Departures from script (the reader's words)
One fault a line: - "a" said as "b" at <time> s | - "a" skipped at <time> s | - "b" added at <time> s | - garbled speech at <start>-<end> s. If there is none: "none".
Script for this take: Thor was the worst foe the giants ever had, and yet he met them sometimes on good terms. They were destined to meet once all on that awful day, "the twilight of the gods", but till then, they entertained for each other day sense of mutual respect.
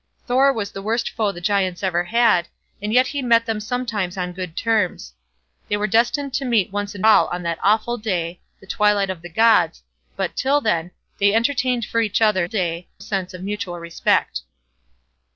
none